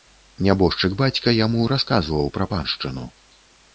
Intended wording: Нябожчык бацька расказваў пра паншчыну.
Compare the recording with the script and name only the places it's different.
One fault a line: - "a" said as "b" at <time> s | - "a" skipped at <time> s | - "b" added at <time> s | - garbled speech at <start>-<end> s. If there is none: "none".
- "яму" added at 1.4 s